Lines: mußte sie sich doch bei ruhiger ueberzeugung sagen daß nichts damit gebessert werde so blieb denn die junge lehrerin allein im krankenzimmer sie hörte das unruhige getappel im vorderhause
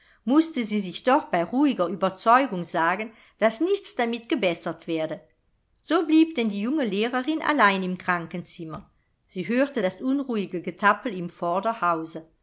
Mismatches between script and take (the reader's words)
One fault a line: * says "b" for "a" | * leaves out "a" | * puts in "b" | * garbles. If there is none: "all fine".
all fine